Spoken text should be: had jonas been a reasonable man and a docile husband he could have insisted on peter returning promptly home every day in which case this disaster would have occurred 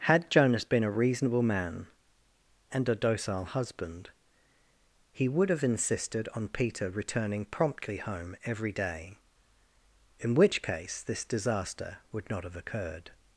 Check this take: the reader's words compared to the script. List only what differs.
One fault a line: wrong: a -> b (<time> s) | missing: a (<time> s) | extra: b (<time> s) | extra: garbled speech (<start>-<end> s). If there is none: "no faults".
wrong: could -> would (5.3 s)
extra: not (12.3 s)